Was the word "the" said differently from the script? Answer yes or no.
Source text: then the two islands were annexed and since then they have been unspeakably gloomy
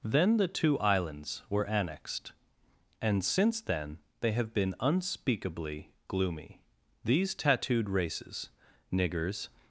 no